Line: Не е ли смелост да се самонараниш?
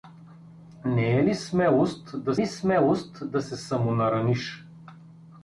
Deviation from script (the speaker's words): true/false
true